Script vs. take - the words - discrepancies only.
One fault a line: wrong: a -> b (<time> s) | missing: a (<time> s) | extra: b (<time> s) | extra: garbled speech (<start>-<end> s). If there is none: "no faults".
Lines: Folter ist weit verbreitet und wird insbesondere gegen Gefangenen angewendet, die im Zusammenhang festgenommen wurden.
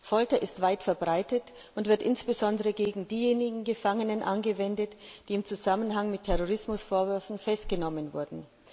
extra: diejenigen (3.1 s)
extra: mit Terrorismusvorwürfen (6.1 s)